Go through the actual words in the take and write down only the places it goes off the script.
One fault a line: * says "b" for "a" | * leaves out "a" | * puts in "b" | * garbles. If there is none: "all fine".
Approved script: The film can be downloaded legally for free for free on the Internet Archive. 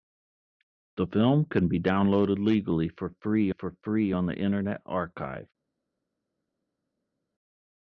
all fine